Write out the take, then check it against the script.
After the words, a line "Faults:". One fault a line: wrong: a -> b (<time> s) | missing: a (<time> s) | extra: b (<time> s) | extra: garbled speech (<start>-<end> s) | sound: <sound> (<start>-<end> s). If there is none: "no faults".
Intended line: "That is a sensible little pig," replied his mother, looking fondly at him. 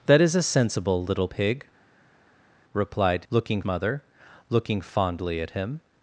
"That is a sensible little pig," replied looking mother, looking fondly at him.
Faults:
wrong: his -> looking (3.3 s)